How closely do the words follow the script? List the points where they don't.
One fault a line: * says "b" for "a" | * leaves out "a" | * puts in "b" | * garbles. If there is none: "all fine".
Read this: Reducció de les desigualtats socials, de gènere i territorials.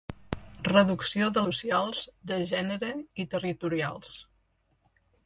* leaves out "les desigualtats"